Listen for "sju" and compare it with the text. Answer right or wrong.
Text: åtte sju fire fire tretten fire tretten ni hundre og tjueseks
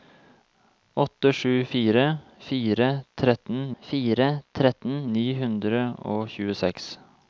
right